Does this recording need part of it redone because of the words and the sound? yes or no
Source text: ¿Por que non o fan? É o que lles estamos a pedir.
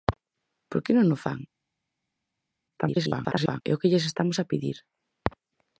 yes